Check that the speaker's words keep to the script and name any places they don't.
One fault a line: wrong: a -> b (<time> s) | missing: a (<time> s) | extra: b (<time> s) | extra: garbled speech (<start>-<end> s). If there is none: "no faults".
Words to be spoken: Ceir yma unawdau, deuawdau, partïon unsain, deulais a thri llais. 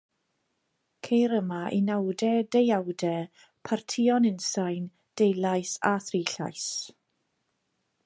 no faults